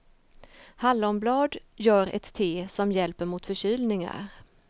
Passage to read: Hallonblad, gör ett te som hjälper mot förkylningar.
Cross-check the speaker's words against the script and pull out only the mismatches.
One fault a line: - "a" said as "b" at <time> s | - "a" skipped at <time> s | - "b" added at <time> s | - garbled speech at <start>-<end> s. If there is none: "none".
none